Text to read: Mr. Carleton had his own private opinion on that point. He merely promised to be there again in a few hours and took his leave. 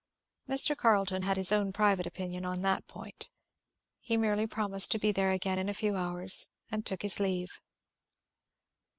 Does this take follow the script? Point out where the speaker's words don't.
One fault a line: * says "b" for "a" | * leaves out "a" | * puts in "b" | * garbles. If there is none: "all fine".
all fine